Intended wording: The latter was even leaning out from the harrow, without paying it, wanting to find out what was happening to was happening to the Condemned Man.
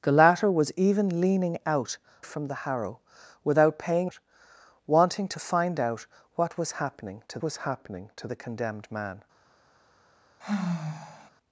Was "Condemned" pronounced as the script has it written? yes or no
yes